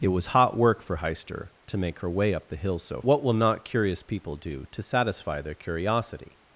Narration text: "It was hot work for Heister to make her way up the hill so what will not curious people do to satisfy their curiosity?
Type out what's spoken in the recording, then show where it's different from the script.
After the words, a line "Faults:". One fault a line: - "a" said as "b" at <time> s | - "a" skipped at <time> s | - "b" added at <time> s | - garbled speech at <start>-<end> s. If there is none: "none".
"It was hot work for Heister to make her way up the hill so what will not curious people do to satisfy their curiosity?
Faults:
none